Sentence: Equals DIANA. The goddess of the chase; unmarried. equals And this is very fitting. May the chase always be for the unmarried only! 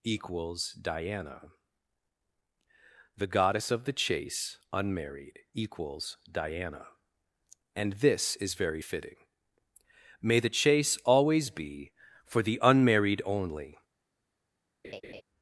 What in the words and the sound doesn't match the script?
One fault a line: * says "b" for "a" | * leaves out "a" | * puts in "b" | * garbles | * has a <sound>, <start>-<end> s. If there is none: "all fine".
* puts in "diana"
* has a laugh, 14.8-15.2 s